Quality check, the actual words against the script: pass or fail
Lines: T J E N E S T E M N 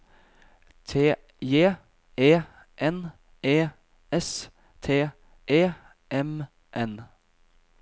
pass